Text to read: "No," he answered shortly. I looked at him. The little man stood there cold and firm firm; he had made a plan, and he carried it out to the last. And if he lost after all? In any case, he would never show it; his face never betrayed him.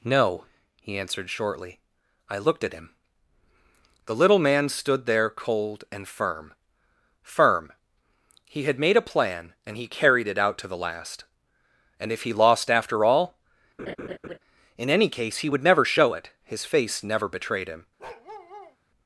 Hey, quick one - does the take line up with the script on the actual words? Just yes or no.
yes